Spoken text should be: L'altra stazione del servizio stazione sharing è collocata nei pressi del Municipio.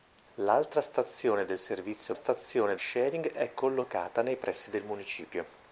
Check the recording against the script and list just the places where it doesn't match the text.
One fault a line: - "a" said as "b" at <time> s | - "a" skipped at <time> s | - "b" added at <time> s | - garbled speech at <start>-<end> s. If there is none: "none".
none